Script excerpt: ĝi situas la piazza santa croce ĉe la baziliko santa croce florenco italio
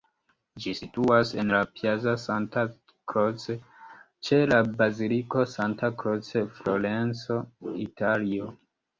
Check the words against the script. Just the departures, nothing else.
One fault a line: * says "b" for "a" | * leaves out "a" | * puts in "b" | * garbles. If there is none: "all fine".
* puts in "en"